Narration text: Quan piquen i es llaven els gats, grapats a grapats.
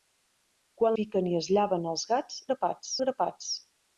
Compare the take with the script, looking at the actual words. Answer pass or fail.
pass